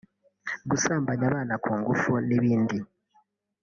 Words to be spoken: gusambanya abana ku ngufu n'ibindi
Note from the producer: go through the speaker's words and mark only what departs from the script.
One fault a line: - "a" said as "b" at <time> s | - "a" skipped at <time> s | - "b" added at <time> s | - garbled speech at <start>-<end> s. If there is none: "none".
none